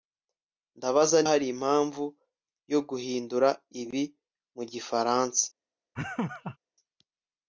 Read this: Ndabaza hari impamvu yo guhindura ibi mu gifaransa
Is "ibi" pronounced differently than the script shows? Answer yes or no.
no